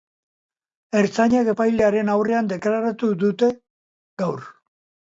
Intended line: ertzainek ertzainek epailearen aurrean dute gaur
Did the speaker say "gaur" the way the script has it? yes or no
yes